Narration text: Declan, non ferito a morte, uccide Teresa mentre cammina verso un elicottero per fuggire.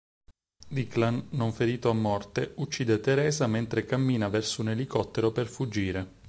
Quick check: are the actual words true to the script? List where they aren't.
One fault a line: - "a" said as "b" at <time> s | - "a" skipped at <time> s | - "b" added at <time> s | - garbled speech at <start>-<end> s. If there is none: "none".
none